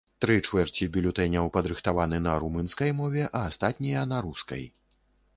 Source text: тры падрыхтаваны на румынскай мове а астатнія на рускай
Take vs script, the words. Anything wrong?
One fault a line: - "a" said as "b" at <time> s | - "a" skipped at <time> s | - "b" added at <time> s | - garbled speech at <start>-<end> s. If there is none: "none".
- "чвэрці бюлетэняў" added at 0.5 s